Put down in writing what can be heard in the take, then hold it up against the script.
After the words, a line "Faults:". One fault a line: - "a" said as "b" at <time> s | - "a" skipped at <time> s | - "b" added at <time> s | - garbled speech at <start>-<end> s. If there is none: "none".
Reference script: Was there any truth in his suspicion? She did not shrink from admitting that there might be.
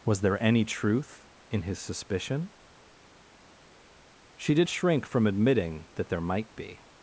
Was there any truth in his suspicion? She did shrink from admitting that there might be.
Faults:
- "not" skipped at 4.7 s